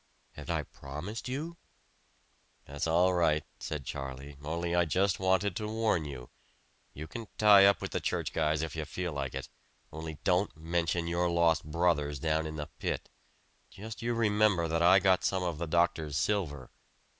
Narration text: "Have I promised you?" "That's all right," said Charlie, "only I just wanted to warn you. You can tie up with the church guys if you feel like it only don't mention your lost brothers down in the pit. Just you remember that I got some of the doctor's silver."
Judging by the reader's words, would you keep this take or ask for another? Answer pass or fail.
pass